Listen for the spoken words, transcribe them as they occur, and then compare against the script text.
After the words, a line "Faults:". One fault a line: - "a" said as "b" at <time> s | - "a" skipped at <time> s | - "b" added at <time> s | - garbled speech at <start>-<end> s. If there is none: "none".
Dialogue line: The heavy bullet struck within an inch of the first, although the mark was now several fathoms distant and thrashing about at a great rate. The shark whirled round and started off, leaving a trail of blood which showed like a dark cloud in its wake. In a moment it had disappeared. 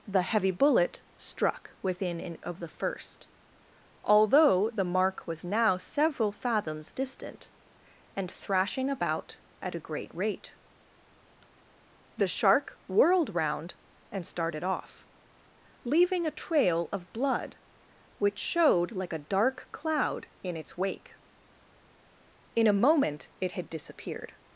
The heavy bullet struck within an of the first, although the mark was now several fathoms distant and thrashing about at a great rate. The shark whirled round and started off, leaving a trail of blood which showed like a dark cloud in its wake. In a moment it had disappeared.
Faults:
- "inch" skipped at 2.4 s